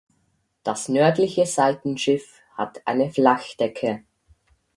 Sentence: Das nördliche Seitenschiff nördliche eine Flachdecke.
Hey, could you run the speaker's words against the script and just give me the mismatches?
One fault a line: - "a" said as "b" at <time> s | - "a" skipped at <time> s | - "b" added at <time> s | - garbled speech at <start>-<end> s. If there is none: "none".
- "nördliche" said as "hat" at 2.6 s